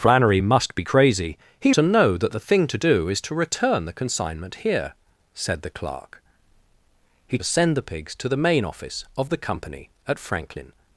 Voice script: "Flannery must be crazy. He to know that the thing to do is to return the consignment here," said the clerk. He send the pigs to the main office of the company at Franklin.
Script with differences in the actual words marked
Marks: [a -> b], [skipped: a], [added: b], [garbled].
"Flannery must be crazy. He to know that the thing to do is to return the consignment here," said the clerk. He send the pigs to the main office of the company at Franklin.